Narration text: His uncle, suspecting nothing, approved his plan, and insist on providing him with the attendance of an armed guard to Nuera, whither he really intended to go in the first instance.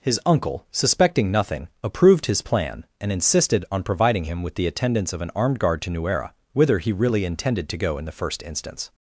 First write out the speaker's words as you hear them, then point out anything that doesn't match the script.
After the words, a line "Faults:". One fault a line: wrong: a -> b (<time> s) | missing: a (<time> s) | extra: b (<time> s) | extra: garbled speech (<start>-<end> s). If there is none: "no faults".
His uncle, suspecting nothing, approved his plan, and insisted on providing him with the attendance of an armed guard to Nuera, whither he really intended to go in the first instance.
Faults:
wrong: insist -> insisted (3.1 s)